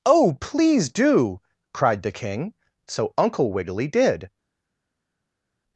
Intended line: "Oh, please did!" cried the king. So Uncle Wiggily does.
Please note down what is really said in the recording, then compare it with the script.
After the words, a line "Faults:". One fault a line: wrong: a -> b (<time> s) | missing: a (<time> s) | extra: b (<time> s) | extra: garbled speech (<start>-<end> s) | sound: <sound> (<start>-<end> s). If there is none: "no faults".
"Oh, please do!" cried the king. So Uncle Wiggily did.
Faults:
wrong: did -> do (0.9 s)
wrong: does -> did (3.9 s)